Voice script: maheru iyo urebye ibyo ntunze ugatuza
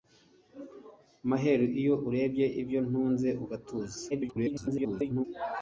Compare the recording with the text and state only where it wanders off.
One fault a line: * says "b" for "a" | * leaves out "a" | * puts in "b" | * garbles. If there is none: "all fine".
* garbles